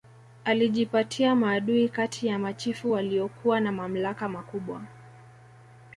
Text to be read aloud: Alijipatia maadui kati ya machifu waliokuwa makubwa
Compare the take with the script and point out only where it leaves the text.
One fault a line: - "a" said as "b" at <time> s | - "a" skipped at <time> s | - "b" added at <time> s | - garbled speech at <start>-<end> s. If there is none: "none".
- "na mamlaka" added at 3.6 s